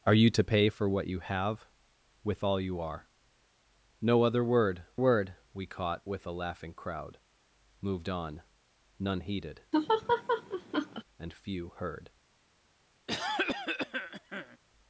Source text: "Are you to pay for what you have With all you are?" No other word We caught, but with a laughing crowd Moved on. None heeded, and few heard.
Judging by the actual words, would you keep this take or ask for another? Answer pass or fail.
fail